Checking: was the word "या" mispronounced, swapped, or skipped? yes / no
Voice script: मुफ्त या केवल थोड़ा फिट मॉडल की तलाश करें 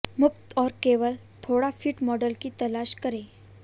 yes